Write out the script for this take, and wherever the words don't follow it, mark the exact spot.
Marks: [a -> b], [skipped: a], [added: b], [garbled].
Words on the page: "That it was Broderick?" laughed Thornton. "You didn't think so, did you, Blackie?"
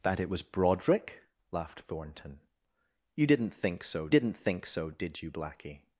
"That it was Broderick?" laughed Thornton. "You didn't think so, [added: didn't think so] did you, Blackie?"